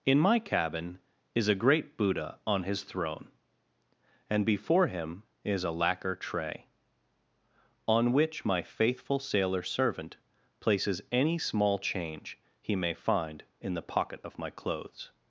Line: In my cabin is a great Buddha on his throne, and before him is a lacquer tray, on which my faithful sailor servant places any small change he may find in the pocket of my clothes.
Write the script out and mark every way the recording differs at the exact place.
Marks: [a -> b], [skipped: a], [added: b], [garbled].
In my cabin is a great Buddha on his throne, and before him is a lacquer tray, on which my faithful sailor servant places any small change he may find in the pocket of my clothes.